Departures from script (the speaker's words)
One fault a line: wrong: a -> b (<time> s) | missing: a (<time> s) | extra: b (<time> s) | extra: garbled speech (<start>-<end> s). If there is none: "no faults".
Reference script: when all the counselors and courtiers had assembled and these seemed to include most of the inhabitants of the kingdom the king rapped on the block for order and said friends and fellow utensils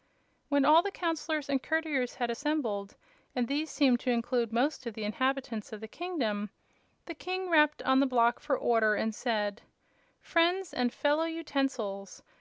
no faults